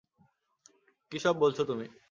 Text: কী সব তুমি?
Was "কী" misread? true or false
false